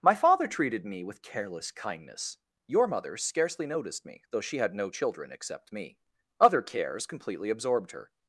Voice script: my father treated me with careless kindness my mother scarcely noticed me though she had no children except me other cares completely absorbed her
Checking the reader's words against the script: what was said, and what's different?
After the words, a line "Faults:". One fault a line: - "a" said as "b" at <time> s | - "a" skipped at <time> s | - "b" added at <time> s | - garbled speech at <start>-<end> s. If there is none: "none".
my father treated me with careless kindness your mother scarcely noticed me though she had no children except me other cares completely absorbed her
Faults:
- "my" said as "your" at 2.6 s